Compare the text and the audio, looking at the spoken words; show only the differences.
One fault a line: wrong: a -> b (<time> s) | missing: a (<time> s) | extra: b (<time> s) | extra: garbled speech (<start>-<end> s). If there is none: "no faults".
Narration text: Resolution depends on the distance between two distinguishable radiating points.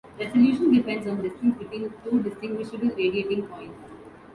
no faults